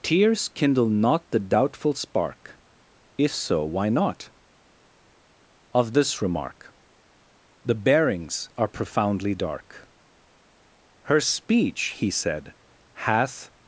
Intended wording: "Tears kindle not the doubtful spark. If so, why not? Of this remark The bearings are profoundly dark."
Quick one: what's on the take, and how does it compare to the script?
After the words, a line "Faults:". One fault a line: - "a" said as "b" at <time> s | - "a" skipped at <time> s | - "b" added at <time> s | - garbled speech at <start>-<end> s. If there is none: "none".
"Tears kindle not the doubtful spark. If so, why not? Of this remark The bearings are profoundly dark." "Her speech," he said, "hath
Faults:
- "Her speech he said hath" added at 11.1 s